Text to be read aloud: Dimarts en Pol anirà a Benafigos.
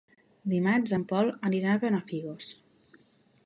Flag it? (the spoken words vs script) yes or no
no